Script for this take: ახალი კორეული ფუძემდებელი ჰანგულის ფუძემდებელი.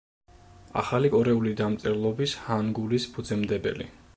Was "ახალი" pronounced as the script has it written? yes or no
yes